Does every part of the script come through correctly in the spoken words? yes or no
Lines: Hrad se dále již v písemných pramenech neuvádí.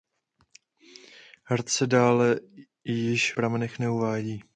no